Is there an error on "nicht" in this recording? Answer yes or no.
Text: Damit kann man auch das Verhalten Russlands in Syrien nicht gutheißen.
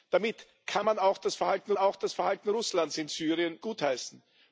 yes